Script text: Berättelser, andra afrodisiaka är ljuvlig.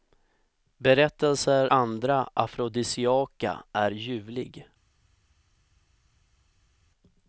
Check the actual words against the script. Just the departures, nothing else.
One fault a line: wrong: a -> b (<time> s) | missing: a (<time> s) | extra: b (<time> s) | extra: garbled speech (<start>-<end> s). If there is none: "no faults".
no faults